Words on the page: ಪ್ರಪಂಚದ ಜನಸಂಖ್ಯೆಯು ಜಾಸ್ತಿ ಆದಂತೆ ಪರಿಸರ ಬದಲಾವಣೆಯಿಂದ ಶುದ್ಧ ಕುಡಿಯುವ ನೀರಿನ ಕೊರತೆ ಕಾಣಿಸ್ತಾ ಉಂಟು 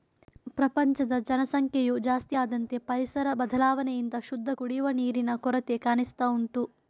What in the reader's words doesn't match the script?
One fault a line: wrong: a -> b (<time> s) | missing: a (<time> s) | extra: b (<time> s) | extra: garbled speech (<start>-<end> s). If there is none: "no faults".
no faults